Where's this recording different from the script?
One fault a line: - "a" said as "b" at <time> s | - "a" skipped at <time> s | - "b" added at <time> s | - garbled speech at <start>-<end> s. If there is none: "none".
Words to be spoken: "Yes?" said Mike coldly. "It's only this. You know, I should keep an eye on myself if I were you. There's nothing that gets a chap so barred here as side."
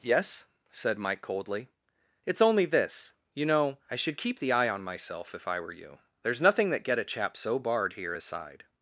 - "an" said as "the" at 4.4 s
- "gets" said as "get" at 6.8 s